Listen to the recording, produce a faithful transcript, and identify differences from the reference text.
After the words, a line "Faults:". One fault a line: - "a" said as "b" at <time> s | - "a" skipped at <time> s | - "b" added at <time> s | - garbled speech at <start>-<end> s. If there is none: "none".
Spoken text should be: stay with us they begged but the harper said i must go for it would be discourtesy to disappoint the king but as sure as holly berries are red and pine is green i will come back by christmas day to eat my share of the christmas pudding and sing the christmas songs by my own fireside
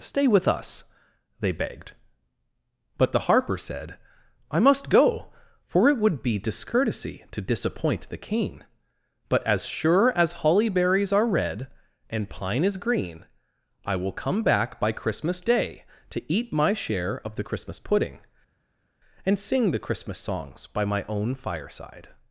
stay with us they begged but the harper said i must go for it would be discourtesy to disappoint the king but as sure as holly berries are red and pine is green i will come back by christmas day to eat my share of the christmas pudding and sing the christmas songs by my own fireside
Faults:
none